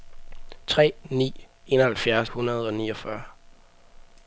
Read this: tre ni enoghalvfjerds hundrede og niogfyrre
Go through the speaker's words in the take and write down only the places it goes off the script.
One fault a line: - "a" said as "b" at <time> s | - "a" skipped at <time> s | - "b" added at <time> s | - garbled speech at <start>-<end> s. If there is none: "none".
none